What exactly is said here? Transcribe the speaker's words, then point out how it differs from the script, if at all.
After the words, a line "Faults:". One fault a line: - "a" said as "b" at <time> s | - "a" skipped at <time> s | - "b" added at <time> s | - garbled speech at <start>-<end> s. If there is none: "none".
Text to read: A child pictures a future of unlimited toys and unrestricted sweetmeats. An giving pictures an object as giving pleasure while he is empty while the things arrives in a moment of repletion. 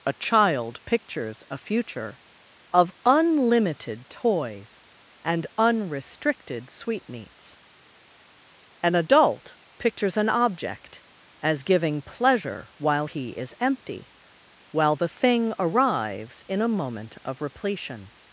A child pictures a future of unlimited toys and unrestricted sweetmeats. An adult pictures an object as giving pleasure while he is empty while the thing arrives in a moment of repletion.
Faults:
- "giving" said as "adult" at 8.9 s
- "things" said as "thing" at 15.1 s